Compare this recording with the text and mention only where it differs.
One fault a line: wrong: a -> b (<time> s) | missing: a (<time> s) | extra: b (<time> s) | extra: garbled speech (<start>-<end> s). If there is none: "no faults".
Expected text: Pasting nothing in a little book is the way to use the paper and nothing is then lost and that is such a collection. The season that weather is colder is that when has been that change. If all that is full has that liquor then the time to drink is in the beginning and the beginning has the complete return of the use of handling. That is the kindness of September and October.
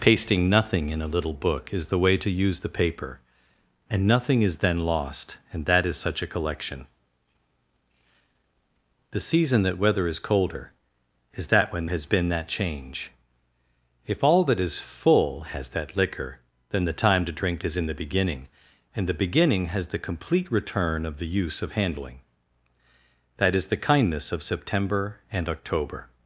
no faults